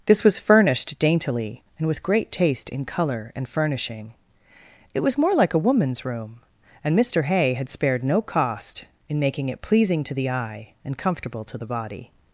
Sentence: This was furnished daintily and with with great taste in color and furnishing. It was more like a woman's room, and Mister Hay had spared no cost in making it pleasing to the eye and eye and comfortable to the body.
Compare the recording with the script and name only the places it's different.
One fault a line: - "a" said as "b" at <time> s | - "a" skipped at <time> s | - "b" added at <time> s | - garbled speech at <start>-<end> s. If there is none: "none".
- "with" skipped at 2.0 s
- "eye and" skipped at 11.0 s